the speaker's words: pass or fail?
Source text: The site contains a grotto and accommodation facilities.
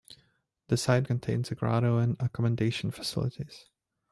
pass